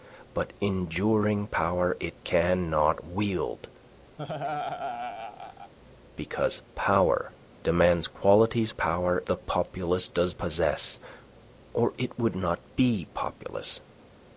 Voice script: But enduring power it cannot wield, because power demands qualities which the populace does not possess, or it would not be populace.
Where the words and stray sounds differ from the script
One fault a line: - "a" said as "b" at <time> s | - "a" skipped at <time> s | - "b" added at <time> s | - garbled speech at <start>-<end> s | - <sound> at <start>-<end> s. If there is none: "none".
- laugh at 4.2-5.7 s
- "which" said as "power" at 8.7 s
- "not" skipped at 10.4 s